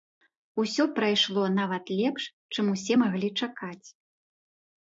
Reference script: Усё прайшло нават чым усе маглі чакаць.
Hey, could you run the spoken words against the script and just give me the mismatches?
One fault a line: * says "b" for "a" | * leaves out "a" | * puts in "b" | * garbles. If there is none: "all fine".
* puts in "лепш"